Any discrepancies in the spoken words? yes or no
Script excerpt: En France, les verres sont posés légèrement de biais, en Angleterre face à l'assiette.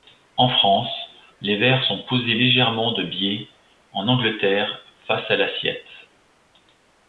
no